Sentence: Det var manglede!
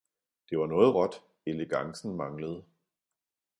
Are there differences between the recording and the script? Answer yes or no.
yes